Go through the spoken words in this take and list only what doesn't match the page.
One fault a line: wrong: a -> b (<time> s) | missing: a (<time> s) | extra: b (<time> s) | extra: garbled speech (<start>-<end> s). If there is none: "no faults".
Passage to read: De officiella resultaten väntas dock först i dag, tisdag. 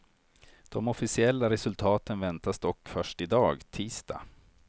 no faults